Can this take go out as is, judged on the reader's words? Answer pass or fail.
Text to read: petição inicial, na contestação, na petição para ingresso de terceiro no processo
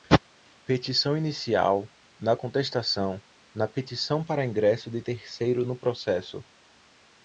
pass